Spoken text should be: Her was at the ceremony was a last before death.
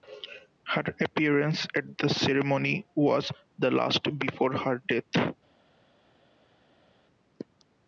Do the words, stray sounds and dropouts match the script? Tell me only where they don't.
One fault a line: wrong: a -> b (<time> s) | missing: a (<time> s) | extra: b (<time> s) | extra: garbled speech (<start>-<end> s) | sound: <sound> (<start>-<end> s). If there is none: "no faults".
wrong: was -> appearance (1.0 s)
wrong: a -> the (3.6 s)
extra: her (4.5 s)